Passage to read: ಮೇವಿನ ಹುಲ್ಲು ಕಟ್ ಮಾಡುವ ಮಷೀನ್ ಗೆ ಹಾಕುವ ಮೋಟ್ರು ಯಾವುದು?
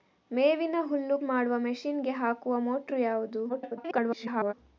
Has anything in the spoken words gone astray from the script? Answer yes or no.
yes